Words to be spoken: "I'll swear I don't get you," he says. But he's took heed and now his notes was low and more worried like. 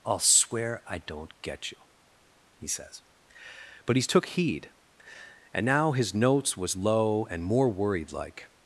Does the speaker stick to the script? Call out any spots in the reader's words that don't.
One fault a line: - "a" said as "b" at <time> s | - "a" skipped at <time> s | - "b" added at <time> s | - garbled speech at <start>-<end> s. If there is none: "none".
none